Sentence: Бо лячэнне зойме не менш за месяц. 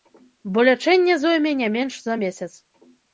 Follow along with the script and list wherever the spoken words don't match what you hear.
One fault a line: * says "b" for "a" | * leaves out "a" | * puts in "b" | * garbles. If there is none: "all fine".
all fine